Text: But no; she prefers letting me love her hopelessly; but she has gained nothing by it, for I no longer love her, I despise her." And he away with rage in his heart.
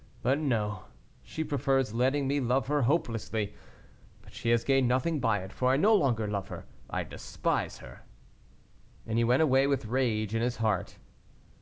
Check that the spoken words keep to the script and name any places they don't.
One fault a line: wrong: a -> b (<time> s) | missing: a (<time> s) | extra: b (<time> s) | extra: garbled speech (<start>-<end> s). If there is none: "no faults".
extra: went (9.2 s)